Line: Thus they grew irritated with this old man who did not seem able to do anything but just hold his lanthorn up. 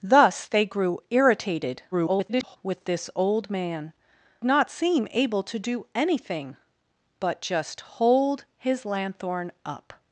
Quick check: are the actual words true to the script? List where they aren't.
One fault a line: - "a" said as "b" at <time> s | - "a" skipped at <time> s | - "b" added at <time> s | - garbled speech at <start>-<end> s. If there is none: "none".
- garbled speech at 1.9-2.6 s
- "who did" skipped at 3.9 s